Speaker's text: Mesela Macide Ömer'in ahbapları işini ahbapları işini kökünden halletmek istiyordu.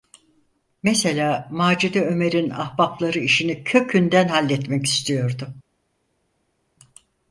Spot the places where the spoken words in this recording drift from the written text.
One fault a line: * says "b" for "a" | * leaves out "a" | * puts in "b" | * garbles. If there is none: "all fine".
* leaves out "ahbapları işini"